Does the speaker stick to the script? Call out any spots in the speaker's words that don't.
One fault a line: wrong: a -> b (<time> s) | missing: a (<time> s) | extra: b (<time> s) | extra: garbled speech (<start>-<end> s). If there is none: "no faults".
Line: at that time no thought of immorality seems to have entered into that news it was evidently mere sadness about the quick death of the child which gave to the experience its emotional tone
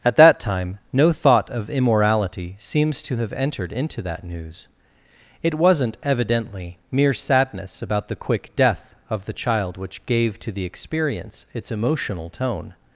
wrong: was -> wasn't (5.5 s)